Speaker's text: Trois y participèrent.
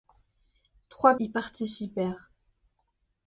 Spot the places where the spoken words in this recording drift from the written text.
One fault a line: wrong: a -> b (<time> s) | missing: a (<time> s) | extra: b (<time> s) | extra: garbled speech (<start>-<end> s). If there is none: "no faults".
no faults